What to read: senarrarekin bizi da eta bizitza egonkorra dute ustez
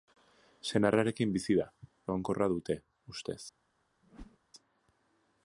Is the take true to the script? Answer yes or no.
no